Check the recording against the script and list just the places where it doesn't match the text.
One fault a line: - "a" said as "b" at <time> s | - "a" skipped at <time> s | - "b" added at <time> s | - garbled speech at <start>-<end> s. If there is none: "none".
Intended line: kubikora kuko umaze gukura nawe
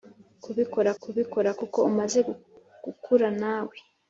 - "kubikora" added at 1.0 s